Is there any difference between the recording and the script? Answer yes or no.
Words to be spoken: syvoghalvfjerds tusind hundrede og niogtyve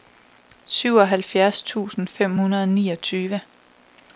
yes